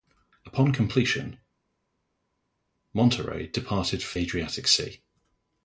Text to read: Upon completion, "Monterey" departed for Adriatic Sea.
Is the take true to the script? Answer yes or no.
yes